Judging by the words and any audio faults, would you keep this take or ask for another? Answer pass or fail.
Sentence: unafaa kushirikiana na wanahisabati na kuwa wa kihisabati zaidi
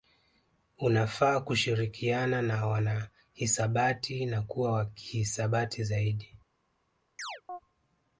fail